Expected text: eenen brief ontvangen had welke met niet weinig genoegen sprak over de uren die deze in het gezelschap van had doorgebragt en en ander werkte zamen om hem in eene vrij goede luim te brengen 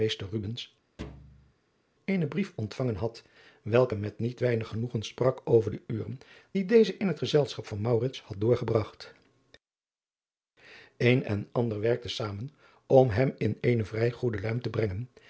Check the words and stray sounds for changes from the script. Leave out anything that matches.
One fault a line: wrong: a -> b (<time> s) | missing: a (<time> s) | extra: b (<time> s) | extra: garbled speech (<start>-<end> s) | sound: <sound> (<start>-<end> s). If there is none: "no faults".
sound: thud (1.0-1.5 s)